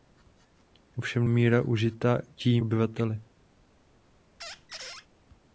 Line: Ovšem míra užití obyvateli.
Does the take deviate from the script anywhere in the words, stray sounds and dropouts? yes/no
yes